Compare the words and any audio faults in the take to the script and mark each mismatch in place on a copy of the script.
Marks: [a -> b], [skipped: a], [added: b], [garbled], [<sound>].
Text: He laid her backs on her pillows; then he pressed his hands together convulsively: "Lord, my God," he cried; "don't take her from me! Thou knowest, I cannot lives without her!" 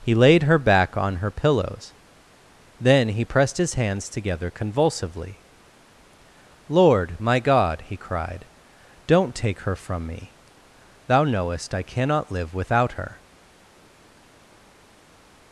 He laid her [backs -> back] on her pillows; then he pressed his hands together convulsively: "Lord, my God," he cried; "don't take her from me! Thou knowest, I cannot [lives -> live] without her!"